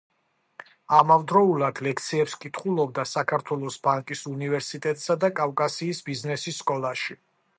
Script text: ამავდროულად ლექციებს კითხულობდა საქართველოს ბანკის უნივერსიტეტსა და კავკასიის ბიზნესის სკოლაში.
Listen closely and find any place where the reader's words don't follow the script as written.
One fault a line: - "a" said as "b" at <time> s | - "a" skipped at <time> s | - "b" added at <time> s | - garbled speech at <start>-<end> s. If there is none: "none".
none